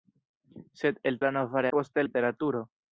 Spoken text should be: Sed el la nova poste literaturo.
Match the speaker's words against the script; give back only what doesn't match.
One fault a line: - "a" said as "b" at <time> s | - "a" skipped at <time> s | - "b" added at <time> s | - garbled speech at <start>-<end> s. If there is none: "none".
none